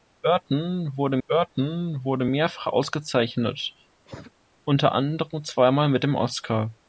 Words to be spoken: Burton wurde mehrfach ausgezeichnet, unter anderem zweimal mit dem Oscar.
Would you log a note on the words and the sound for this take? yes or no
yes